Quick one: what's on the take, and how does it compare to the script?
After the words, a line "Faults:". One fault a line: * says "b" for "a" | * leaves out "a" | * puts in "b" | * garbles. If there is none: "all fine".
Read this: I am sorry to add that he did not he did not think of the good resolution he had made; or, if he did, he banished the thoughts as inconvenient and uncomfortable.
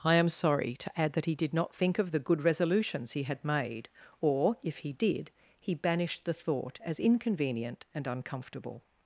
I am sorry to add that he did not think of the good resolutions he had made; or, if he did, he banished the thought as inconvenient and uncomfortable.
Faults:
* leaves out "he did not"
* says "resolutions" for "resolution"
* says "thought" for "thoughts"